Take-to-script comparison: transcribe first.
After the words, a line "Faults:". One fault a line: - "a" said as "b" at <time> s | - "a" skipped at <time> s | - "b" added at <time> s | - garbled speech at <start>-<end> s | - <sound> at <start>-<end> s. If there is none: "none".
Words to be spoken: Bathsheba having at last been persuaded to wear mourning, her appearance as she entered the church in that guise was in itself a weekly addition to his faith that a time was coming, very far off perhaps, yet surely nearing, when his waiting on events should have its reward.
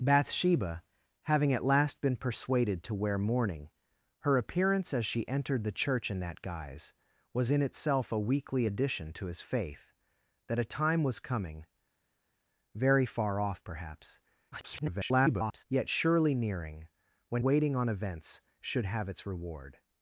Bathsheba having at last been persuaded to wear mourning, her appearance as she entered the church in that guise was in itself a weekly addition to his faith that a time was coming, very far off perhaps, [garbled] yet surely nearing, when waiting on events should have its reward.
Faults:
- garbled speech at 14.5-15.6 s
- "his" skipped at 17.4 s